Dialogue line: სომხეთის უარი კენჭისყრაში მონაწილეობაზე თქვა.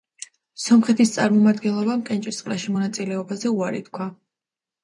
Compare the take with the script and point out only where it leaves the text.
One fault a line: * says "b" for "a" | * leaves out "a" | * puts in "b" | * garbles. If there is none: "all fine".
* says "წარმომადგენლობამ" for "უარი"
* puts in "უარი"